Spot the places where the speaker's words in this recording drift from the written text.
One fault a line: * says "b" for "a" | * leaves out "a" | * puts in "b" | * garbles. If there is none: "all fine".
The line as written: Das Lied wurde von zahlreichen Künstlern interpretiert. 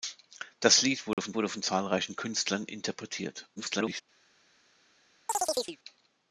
* puts in "wurde von"
* garbles